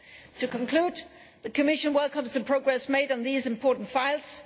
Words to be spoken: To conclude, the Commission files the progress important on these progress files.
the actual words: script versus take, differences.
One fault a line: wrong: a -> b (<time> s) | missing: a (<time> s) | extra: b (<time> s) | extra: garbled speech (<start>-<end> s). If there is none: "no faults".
wrong: files -> welcomes (1.9 s)
wrong: important -> made (2.9 s)
wrong: progress -> important (3.5 s)